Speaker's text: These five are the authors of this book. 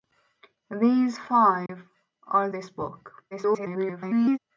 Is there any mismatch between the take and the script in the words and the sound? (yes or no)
yes